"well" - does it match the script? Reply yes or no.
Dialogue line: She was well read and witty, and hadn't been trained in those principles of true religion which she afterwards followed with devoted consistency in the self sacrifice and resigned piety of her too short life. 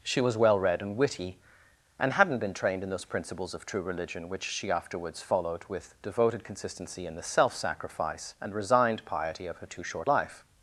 yes